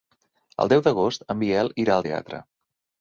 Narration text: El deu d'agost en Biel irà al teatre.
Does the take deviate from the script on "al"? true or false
false